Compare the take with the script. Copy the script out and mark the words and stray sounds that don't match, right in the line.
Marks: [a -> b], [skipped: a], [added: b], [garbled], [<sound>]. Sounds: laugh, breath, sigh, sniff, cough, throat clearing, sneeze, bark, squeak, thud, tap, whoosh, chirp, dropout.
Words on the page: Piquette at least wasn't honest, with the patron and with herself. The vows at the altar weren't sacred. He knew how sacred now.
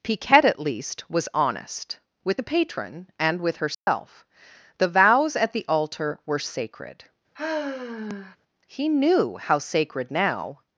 Piquette at least [wasn't -> was] honest, with the patron and with herself. [dropout] The vows at the altar [weren't -> were] sacred. [sigh] He knew how sacred now.